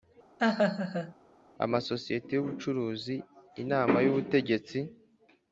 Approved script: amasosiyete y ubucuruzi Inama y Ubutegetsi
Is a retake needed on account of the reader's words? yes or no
no